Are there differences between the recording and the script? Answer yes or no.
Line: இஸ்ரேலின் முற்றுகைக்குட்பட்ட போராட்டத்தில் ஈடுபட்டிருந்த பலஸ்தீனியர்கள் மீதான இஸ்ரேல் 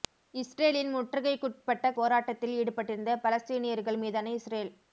no